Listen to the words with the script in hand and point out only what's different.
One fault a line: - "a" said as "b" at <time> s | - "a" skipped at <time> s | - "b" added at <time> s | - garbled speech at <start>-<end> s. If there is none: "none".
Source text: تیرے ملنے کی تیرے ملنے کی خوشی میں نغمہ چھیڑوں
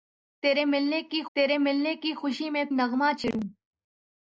none